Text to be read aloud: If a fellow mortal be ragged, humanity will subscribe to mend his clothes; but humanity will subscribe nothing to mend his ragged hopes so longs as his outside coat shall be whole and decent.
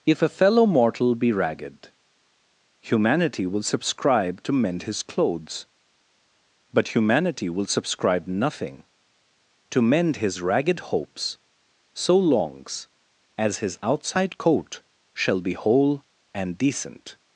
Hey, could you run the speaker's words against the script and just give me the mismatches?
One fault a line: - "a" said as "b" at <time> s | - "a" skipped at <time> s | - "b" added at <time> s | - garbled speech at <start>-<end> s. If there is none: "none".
none